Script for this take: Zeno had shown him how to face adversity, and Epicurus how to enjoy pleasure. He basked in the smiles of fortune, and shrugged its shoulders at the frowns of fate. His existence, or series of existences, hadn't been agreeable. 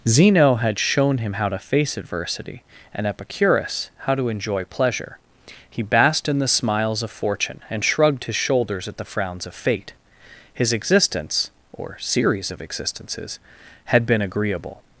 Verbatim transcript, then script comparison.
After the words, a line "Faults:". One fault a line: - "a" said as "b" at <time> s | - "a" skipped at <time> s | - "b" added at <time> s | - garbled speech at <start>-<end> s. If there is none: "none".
Zeno had shown him how to face adversity, and Epicurus how to enjoy pleasure. He basked in the smiles of fortune, and shrugged his shoulders at the frowns of fate. His existence, or series of existences, had been agreeable.
Faults:
- "its" said as "his" at 8.2 s
- "hadn't" said as "had" at 13.8 s